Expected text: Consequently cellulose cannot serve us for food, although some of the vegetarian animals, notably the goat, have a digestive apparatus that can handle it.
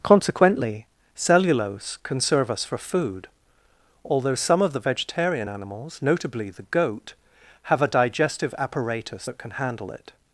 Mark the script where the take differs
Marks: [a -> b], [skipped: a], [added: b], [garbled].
Consequently cellulose [cannot -> can] serve us for food, although some of the vegetarian animals, notably the goat, have a digestive apparatus that can handle it.